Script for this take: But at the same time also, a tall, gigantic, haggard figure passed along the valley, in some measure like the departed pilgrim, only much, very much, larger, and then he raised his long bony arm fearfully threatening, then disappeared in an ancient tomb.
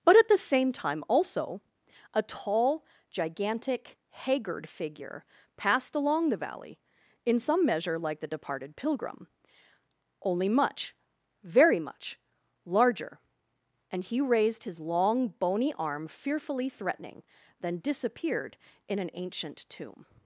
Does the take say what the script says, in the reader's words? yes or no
no